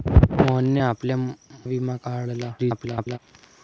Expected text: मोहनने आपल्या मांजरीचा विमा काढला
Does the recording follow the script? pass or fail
fail